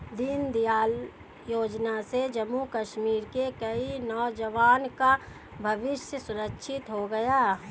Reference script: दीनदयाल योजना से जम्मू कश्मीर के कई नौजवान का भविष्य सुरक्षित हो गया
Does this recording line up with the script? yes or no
yes